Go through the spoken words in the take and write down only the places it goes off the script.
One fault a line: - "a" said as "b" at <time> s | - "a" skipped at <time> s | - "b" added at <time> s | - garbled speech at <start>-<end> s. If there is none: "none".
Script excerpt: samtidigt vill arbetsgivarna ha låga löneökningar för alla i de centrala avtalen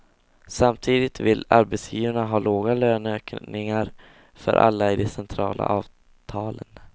none